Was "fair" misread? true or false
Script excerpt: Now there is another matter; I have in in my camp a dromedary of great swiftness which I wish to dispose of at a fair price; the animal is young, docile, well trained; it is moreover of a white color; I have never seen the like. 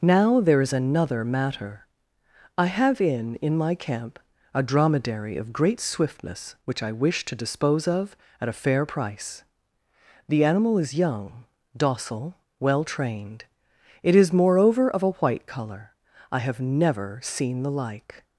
false